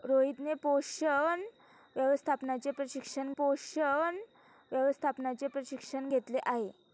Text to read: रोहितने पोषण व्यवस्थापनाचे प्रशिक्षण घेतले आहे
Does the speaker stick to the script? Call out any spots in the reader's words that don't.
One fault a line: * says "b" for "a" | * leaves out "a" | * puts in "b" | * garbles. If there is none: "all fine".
* puts in "पोषण व्यवस्थापनाचे प्रशिक्षण"